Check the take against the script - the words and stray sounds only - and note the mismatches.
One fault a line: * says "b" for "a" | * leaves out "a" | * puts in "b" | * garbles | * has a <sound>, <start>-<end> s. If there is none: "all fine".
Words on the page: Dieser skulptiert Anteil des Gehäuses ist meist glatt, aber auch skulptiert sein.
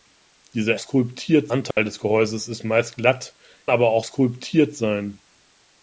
* has a dropout, 1.7-1.8 s